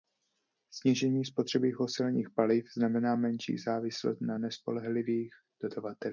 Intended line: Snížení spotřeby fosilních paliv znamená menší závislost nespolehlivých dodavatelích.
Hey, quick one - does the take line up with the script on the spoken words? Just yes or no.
no